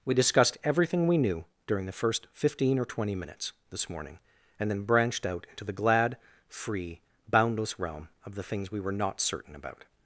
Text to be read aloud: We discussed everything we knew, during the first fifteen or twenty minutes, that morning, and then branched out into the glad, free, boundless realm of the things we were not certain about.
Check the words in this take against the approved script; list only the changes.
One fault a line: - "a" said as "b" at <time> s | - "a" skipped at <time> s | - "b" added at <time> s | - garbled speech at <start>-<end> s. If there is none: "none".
- "that" said as "this" at 3.7 s